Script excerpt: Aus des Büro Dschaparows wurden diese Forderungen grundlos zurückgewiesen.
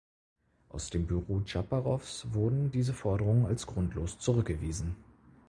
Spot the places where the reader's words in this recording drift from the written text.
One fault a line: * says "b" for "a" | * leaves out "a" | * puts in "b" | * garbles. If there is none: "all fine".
* says "dem" for "des"
* puts in "als"